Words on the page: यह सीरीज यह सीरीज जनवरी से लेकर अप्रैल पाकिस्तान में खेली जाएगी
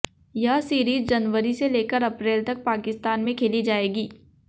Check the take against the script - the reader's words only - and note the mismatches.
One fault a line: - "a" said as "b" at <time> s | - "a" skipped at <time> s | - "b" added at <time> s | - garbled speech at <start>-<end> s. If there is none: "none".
- "यह सीरीज" skipped at 1.1 s
- "तक" added at 2.4 s